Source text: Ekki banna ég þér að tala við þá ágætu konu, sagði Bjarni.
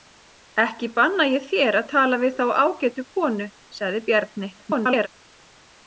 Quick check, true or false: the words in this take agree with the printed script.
false